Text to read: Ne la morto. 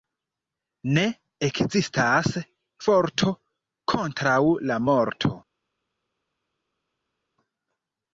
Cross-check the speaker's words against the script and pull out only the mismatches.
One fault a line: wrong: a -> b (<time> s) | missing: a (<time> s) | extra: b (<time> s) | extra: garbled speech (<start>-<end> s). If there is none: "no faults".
extra: ekzistas forto kontraŭ (1.5 s)